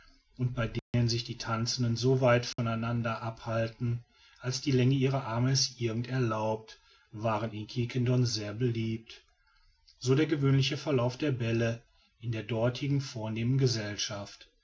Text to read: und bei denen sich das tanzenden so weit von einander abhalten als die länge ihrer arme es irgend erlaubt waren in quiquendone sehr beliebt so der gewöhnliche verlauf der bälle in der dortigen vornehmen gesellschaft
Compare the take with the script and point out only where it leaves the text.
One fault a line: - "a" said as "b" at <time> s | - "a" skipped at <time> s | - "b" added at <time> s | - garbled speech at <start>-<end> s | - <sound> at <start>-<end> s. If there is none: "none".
- dropout at 0.8-0.9 s
- "das" said as "die" at 1.2 s
- dropout at 2.5-2.6 s